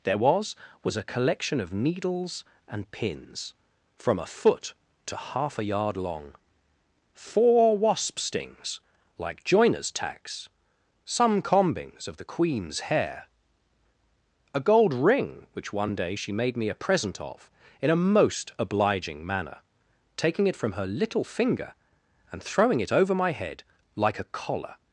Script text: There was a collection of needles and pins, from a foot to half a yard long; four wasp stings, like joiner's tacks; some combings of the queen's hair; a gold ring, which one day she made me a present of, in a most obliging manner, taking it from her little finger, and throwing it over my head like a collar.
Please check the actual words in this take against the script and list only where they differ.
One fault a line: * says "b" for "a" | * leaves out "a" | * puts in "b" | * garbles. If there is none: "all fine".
* puts in "was"